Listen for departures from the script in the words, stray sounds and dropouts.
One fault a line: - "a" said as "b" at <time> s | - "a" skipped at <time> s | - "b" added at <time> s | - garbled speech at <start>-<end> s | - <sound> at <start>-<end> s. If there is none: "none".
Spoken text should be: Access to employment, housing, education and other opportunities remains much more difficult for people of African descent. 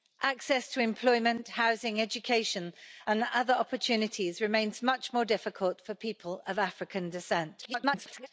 - garbled speech at 7.6-8.3 s